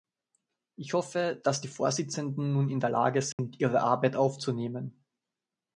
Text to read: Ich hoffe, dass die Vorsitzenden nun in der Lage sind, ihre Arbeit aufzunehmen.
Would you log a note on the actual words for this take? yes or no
no